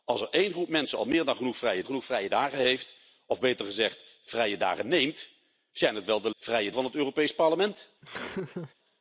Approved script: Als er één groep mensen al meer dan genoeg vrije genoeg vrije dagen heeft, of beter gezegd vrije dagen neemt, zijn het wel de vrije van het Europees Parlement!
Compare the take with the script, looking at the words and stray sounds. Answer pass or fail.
fail